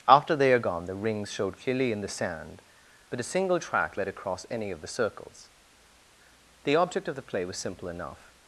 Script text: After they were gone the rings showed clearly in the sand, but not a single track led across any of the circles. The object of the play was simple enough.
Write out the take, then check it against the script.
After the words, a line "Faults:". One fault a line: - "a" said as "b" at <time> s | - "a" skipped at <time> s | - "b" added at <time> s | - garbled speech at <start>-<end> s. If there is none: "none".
After they are gone the rings showed clearly in the sand, but a single track led across any of the circles. The object of the play was simple enough.
Faults:
- "were" said as "are" at 0.5 s
- "not" skipped at 3.2 s